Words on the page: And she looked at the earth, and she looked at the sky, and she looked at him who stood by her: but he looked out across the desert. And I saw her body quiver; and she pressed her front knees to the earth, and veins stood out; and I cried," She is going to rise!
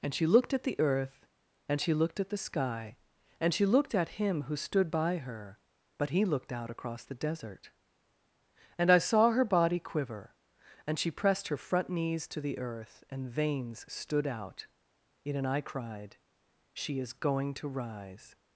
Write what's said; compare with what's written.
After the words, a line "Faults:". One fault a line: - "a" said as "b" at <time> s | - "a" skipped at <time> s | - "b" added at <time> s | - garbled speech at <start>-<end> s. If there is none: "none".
And she looked at the earth, and she looked at the sky, and she looked at him who stood by her: but he looked out across the desert. And I saw her body quiver; and she pressed her front knees to the earth, and veins stood out; yet and I cried," She is going to rise!
Faults:
- "yet" added at 15.2 s